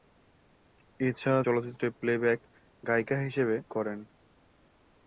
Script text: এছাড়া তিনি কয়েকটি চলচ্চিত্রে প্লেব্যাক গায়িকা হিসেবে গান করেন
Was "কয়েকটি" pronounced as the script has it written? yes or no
no